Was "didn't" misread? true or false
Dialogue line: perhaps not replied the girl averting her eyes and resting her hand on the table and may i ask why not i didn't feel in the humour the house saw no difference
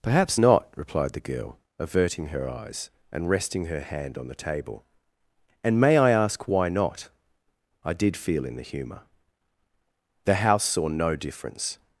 true